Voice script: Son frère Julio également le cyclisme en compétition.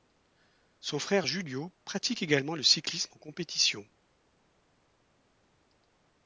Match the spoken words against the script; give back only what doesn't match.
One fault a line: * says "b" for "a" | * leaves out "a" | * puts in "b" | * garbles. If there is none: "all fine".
* puts in "pratique"